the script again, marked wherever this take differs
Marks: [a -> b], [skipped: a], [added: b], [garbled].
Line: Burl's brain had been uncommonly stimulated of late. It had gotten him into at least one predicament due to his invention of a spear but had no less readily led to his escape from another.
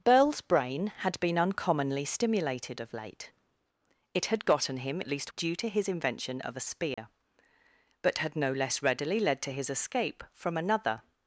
Burl's brain had been uncommonly stimulated of late. It had gotten him [skipped: into] at least [skipped: one predicament] due to his invention of a spear but had no less readily led to his escape from another.